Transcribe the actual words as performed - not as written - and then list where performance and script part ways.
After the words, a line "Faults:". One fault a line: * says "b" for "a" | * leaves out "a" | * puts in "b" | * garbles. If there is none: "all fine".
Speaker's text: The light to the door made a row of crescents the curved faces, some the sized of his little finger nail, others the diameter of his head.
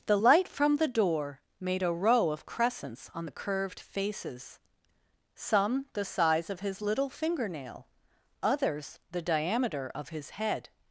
The light from the door made a row of crescents on the curved faces, some the size of his little finger nail, others the diameter of his head.
Faults:
* says "from" for "to"
* puts in "on"
* says "size" for "sized"